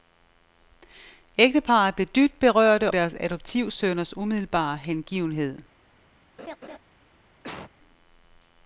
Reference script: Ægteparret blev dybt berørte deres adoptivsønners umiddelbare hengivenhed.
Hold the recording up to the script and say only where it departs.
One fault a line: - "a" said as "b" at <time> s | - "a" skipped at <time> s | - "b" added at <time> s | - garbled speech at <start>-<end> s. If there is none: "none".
none